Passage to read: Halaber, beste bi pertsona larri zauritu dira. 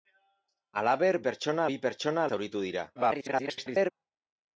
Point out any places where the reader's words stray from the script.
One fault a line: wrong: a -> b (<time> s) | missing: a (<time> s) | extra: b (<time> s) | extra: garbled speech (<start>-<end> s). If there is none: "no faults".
wrong: beste -> pertsona (1.3 s)
missing: larri (2.3 s)
extra: garbled speech (3.0-3.9 s)